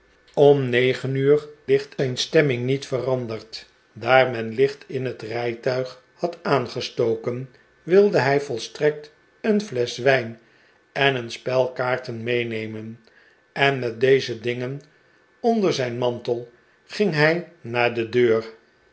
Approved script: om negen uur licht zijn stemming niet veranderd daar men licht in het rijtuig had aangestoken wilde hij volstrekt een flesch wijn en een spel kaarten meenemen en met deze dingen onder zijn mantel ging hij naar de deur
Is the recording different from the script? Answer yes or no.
no